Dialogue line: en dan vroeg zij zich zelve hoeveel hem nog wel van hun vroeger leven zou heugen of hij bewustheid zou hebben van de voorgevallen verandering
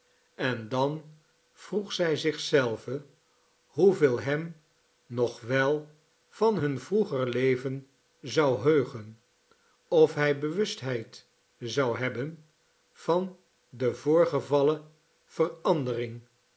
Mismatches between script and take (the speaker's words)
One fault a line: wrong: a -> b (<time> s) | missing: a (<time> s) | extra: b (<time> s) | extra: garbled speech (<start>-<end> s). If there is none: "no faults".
no faults